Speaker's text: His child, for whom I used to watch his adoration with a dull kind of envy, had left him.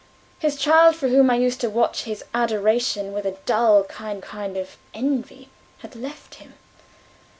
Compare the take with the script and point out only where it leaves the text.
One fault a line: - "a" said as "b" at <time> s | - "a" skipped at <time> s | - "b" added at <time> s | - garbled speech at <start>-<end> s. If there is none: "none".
- "kind" added at 4.2 s